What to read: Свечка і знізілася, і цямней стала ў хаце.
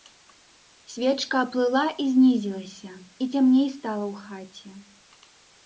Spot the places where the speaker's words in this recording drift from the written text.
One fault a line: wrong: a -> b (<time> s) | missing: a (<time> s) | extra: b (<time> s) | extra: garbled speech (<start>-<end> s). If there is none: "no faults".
extra: аплыла (1.5 s)